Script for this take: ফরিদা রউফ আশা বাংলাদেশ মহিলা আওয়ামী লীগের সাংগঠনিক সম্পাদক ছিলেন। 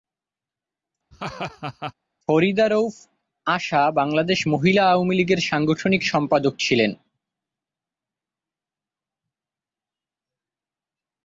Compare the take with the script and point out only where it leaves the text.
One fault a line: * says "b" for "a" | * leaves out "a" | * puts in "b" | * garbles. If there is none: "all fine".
all fine